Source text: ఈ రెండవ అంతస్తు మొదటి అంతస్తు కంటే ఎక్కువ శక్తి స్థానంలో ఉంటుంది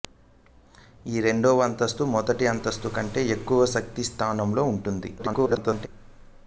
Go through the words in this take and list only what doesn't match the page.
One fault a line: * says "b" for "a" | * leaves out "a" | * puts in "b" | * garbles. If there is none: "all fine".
* garbles